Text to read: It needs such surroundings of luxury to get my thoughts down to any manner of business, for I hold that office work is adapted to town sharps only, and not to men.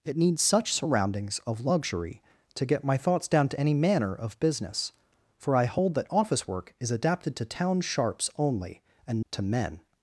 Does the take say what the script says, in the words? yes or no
no